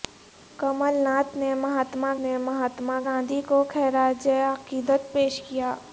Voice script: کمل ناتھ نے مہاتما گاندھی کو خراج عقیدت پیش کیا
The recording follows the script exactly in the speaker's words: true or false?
false